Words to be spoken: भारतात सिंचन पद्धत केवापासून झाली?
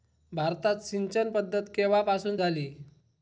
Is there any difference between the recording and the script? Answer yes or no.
no